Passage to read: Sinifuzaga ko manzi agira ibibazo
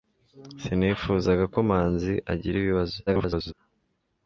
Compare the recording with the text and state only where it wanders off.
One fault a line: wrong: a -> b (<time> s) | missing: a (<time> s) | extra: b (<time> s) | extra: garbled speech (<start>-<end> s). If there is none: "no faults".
extra: garbled speech (3.1-3.5 s)